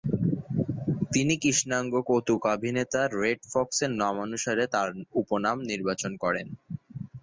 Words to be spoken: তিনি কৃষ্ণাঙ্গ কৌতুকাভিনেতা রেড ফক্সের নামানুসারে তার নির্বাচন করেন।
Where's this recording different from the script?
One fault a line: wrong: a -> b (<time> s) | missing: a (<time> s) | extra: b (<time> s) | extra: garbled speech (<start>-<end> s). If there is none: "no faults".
extra: উপনাম (5.2 s)